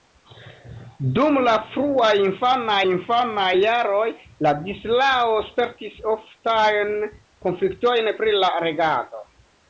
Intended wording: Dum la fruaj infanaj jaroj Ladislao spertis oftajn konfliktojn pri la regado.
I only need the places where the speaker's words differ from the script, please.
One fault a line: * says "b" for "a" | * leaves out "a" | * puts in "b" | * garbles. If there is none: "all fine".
* puts in "infanaj"